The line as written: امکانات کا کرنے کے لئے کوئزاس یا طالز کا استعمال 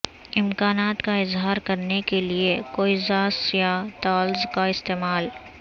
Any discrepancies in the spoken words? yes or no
yes